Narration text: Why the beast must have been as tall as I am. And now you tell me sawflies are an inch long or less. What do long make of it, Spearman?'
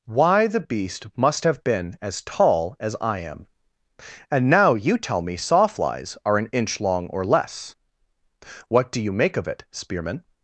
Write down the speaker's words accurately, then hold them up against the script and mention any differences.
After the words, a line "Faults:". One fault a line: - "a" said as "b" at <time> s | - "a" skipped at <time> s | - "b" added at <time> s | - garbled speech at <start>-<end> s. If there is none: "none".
Why the beast must have been as tall as I am. And now you tell me sawflies are an inch long or less. What do you make of it, Spearman?'
Faults:
- "long" said as "you" at 9.0 s